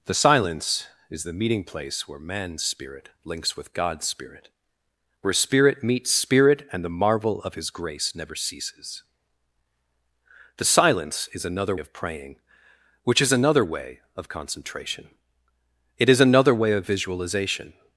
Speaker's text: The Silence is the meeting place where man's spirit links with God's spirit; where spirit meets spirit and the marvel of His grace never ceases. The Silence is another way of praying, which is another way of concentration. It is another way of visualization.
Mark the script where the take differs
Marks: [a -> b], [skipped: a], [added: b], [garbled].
The Silence is the meeting place where man's spirit links with God's spirit; where spirit meets spirit and the marvel of His grace never ceases. The Silence is another [skipped: way] of praying, which is another way of concentration. It is another way of visualization.